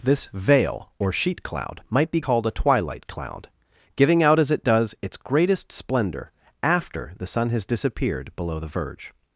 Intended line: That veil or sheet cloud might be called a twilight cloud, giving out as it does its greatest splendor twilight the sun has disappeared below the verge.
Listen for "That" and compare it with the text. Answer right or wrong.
wrong